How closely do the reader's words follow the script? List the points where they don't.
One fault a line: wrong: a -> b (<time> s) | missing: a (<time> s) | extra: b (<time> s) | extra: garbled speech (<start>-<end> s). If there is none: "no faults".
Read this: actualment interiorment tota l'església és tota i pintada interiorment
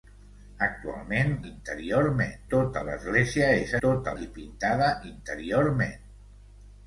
no faults